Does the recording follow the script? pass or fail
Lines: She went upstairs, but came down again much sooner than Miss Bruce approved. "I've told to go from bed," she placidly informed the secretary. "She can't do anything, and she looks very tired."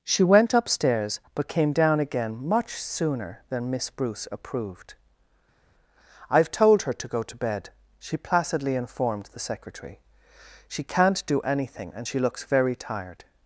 fail